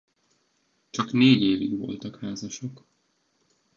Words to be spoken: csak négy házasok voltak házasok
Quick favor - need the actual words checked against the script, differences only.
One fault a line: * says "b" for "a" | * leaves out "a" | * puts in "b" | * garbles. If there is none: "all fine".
* says "évig" for "házasok"